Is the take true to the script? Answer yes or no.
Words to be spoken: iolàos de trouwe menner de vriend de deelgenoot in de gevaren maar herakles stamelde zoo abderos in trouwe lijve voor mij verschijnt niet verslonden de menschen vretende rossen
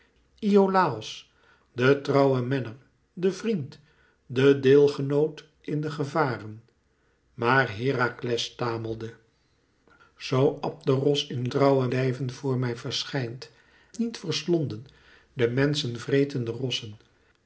yes